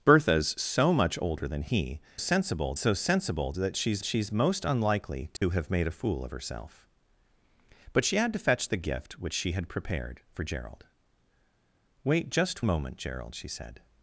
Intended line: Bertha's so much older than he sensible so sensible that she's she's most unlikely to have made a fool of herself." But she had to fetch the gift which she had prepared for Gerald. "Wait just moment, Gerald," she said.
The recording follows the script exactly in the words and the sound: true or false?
false